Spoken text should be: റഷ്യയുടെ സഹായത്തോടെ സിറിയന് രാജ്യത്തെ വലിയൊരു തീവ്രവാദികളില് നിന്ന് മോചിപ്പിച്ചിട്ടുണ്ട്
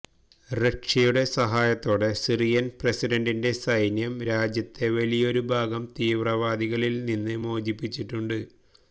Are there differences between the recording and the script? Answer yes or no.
yes